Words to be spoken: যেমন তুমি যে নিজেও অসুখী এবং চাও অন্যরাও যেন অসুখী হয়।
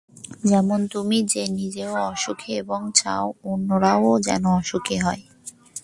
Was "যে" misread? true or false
false